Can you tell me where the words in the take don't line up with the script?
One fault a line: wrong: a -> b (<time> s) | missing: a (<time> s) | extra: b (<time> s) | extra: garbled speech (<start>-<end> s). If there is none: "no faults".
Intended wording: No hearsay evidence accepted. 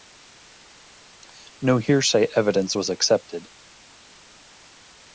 extra: was (2.8 s)